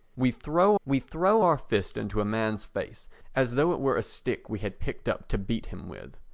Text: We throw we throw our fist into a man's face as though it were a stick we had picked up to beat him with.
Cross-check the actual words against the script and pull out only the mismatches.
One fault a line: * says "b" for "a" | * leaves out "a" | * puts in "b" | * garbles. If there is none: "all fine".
all fine